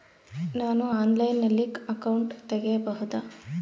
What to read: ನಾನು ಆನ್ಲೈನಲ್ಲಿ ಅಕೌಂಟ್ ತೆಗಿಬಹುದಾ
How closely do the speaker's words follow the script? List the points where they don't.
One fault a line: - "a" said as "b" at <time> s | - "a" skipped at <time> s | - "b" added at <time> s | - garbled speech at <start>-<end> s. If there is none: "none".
none